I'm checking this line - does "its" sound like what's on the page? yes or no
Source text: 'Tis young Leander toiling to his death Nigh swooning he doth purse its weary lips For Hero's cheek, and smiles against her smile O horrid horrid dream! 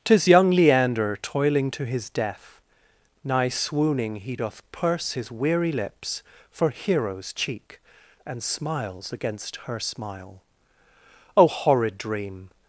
no